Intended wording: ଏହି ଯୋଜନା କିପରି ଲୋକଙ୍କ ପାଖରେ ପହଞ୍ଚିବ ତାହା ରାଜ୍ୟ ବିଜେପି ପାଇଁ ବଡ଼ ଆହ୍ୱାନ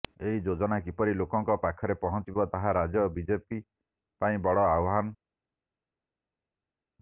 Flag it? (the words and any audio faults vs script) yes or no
no